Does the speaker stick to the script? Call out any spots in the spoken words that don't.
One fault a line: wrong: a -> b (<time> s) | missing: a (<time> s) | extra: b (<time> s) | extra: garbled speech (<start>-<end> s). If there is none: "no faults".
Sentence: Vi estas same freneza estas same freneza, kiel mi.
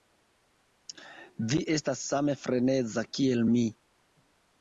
missing: estas same freneza (3.0 s)